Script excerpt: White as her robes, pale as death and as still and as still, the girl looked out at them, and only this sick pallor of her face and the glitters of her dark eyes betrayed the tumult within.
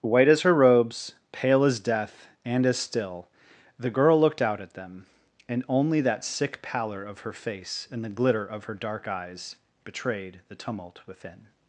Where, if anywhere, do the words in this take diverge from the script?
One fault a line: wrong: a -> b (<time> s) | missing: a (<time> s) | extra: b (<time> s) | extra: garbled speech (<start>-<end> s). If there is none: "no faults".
missing: and as still (3.3 s)
wrong: this -> that (6.0 s)
wrong: glitters -> glitter (8.1 s)